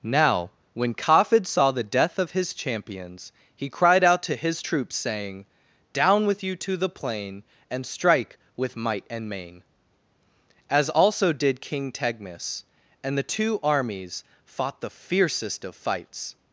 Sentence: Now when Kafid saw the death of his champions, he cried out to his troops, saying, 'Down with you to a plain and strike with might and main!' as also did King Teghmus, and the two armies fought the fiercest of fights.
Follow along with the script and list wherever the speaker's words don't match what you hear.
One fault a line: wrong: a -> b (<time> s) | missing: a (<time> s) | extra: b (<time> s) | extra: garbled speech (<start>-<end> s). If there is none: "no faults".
wrong: a -> the (6.8 s)